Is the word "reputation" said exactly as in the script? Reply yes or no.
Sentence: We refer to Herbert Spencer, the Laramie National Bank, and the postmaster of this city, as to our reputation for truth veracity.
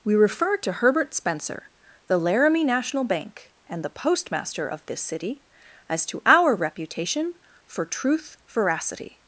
yes